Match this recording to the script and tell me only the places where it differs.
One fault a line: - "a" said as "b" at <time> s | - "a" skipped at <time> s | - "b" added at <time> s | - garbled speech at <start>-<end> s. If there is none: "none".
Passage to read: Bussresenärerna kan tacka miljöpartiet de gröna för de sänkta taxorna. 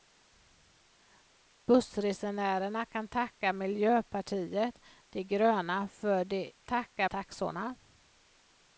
- "sänkta" said as "tacka" at 6.6 s